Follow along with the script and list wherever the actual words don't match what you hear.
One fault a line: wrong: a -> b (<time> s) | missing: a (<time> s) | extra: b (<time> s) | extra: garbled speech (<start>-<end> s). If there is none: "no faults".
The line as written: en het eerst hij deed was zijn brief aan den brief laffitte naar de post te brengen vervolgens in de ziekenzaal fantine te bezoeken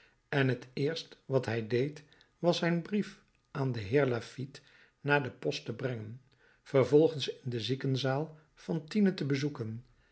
extra: wat (1.2 s)
wrong: brief -> heer (3.8 s)